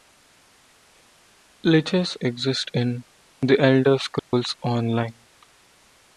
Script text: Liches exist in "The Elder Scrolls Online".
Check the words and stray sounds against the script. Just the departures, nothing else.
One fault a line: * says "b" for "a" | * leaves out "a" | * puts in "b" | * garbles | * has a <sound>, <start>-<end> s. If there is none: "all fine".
* has a dropout, 4.2-4.3 s